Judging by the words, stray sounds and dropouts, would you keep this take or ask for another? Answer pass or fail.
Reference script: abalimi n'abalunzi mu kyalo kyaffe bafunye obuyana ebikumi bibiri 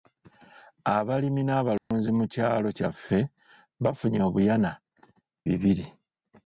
fail